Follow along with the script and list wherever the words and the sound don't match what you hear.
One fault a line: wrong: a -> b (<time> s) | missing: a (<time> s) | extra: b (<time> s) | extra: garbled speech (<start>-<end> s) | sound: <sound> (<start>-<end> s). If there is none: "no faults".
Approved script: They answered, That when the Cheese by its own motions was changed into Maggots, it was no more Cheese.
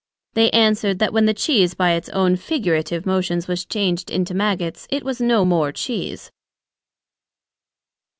extra: figurative (2.4 s)